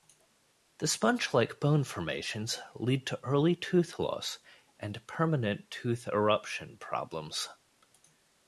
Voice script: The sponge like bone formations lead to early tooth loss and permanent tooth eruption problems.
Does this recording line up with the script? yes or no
yes